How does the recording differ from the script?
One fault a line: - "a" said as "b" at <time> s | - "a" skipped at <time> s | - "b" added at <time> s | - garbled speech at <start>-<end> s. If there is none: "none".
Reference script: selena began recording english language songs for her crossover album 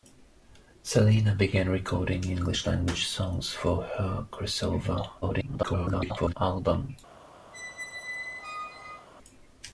- garbled speech at 5.2-6.3 s